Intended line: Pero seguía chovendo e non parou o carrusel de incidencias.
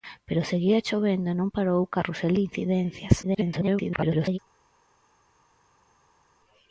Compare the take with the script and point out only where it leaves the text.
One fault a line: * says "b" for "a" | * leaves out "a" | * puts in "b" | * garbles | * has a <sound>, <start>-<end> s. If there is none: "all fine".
* garbles